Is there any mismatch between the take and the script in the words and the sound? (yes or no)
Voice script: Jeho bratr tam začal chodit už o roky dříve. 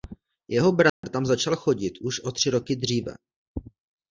yes